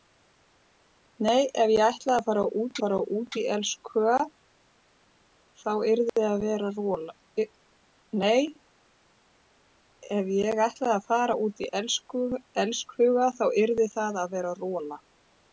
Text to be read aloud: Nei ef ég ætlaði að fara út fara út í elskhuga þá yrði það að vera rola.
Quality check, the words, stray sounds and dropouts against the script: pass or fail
pass